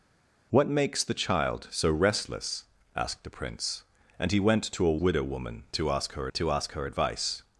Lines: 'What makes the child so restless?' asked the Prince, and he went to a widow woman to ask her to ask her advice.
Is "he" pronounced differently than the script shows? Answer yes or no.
no